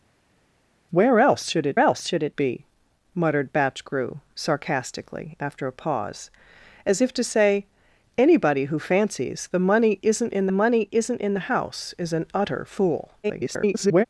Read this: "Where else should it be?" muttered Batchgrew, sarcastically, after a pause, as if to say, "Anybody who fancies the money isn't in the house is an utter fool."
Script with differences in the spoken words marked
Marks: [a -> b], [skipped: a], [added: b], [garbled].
"Where else should it [added: else should it] be?" muttered Batchgrew, sarcastically, after a pause, as if to say, "Anybody who fancies the money isn't in [added: money isn't in] the house is an utter fool." [garbled]